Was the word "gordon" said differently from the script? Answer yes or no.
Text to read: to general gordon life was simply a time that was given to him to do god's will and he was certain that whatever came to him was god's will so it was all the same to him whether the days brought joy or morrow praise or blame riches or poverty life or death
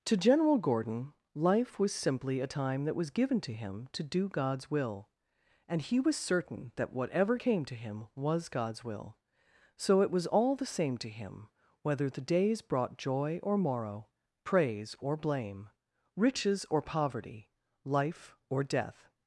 no